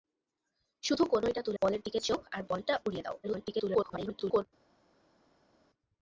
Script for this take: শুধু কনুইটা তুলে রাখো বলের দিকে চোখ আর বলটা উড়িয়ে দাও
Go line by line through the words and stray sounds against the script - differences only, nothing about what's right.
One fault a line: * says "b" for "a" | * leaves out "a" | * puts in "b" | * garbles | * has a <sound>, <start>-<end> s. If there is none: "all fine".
* leaves out "রাখো"
* garbles